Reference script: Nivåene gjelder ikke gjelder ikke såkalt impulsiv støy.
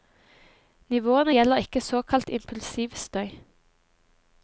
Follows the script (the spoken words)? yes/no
no